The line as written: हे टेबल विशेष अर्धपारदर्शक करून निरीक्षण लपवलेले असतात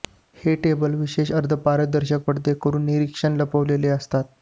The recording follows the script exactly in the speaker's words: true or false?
false